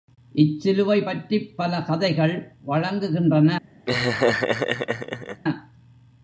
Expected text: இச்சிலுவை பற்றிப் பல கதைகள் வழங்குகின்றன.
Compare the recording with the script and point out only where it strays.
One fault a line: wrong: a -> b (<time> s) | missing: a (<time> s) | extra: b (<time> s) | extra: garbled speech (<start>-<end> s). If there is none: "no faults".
no faults